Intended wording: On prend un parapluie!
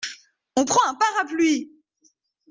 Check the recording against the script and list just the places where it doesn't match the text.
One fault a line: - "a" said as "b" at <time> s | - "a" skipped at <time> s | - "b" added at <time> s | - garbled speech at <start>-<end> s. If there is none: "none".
none